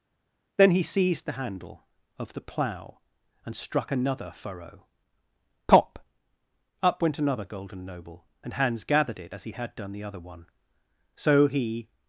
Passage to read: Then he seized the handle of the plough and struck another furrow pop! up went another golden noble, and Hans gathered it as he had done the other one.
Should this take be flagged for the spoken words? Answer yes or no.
yes